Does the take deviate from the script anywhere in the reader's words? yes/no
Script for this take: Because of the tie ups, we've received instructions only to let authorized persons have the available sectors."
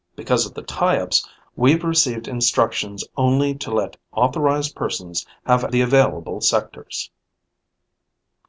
no